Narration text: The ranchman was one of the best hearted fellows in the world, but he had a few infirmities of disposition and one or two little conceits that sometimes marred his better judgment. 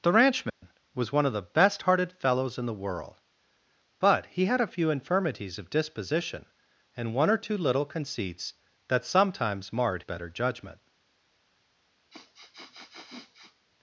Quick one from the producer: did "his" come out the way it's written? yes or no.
no